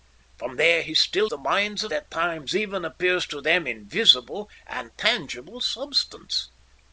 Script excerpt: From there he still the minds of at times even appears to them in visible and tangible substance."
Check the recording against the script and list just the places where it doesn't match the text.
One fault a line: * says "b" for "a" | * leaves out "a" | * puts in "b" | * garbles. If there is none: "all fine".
all fine